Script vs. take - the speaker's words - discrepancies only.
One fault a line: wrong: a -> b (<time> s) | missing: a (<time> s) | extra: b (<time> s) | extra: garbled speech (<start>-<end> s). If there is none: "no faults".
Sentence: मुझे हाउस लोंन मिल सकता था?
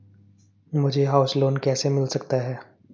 extra: कैसे (1.6 s)
wrong: था -> है (2.4 s)